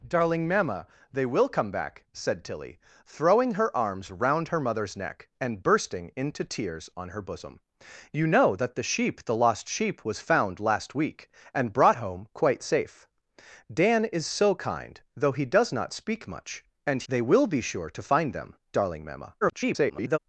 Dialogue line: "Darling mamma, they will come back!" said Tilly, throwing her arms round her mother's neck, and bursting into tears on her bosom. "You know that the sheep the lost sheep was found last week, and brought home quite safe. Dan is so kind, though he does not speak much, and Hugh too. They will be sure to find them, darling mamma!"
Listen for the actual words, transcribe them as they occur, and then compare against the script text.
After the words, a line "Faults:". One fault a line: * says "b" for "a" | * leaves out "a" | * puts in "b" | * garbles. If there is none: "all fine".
"Darling mamma, they will come back!" said Tilly, throwing her arms round her mother's neck, and bursting into tears on her bosom. "You know that the sheep the lost sheep was found last week, and brought home quite safe. Dan is so kind, though he does not speak much, and. They will be sure to find them, darling mamma!" [garbled]
Faults:
* leaves out "Hugh too"
* garbles